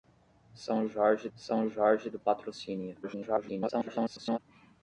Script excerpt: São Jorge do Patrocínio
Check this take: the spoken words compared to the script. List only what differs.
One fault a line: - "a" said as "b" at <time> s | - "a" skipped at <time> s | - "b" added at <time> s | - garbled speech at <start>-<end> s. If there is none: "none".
- "são Jorge" added at 1.4 s
- garbled speech at 3.0-4.4 s